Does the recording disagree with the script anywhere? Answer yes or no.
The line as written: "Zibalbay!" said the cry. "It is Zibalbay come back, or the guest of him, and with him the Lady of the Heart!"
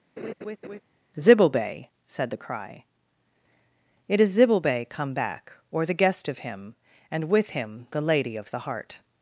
no